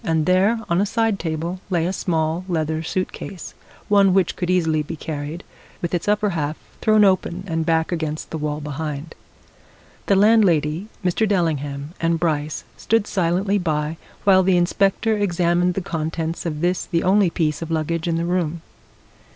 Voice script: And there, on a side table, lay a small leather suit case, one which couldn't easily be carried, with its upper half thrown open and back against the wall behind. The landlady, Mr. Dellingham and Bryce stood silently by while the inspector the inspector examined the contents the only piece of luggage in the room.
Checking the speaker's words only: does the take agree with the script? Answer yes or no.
no